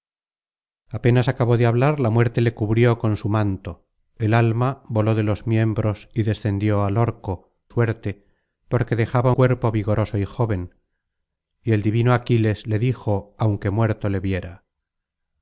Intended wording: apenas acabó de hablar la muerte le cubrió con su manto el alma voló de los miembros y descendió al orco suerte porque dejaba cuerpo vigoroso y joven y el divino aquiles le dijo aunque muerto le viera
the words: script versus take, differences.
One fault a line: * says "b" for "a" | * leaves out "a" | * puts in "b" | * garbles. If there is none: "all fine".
all fine